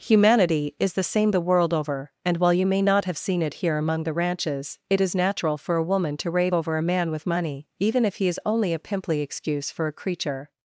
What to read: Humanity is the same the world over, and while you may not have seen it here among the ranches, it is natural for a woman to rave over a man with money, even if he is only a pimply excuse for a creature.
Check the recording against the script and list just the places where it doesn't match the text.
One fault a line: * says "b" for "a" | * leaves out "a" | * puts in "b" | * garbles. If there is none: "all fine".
all fine